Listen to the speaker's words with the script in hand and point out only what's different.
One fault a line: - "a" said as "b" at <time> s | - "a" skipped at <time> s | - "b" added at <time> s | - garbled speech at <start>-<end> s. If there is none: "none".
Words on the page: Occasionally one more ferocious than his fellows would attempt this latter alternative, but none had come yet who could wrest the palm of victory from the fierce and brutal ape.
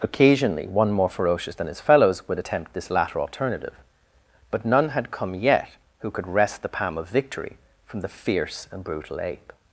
none